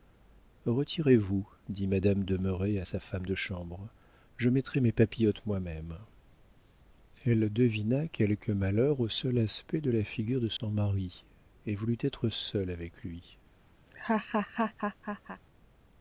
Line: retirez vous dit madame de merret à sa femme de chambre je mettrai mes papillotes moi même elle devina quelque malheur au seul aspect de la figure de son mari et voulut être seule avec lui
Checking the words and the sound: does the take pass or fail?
fail